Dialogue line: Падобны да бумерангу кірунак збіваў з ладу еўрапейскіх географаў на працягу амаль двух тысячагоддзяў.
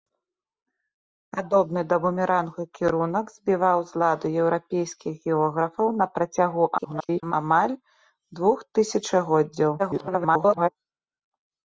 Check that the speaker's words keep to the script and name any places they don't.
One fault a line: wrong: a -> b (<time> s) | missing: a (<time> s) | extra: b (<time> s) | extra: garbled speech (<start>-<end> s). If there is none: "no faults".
extra: garbled speech (6.8-7.3 s)
extra: garbled speech (9.8-10.7 s)